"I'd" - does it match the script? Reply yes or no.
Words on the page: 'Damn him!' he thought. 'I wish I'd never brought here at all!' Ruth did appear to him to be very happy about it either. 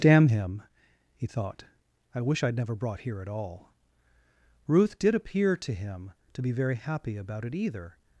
yes